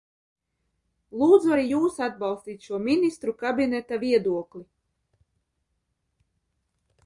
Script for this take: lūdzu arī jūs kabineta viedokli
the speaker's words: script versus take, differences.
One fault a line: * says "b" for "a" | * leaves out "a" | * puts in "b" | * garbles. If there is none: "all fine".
* puts in "atbalstīt šo ministru"